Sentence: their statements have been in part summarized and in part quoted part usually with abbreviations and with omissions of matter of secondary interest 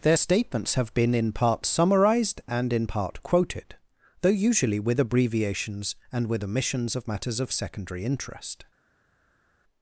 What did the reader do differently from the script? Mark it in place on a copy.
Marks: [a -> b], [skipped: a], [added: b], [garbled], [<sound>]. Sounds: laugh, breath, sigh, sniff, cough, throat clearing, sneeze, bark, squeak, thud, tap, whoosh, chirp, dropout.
their statements have been in part summarized and in part quoted [part -> though] usually with abbreviations and with omissions of [matter -> matters] of secondary interest